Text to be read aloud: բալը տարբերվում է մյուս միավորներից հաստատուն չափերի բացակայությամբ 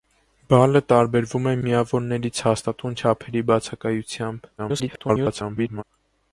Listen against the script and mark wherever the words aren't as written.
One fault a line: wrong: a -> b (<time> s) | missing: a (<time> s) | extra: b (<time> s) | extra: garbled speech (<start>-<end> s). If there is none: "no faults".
missing: մյուս (1.5 s)
extra: garbled speech (4.6-5.8 s)